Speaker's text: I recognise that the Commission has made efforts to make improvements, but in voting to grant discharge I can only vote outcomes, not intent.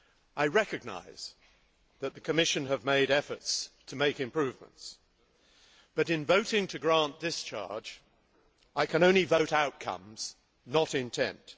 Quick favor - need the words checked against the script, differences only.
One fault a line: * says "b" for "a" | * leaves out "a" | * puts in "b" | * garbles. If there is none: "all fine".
all fine